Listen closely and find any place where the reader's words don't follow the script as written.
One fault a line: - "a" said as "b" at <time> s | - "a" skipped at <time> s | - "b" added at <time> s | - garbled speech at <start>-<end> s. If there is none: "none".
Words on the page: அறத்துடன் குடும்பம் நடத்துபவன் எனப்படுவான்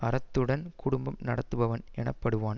none